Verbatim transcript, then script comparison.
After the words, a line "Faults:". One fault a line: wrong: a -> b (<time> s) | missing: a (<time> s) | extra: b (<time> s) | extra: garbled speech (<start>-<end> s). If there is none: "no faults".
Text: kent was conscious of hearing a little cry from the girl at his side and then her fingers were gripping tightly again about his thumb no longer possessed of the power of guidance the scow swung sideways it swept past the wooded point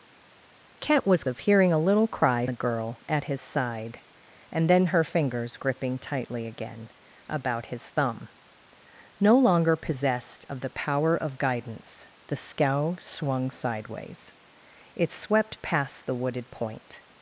kent was of hearing a little cry the girl at his side and then her fingers gripping tightly again about his thumb no longer possessed of the power of guidance the scow swung sideways it swept past the wooded point
Faults:
missing: conscious (1.2 s)
missing: from (2.5 s)
missing: were (5.6 s)